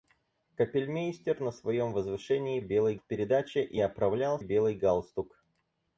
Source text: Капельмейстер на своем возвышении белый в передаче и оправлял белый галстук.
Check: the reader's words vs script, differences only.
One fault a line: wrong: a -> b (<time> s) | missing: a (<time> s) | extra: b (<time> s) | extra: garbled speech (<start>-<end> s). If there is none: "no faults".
no faults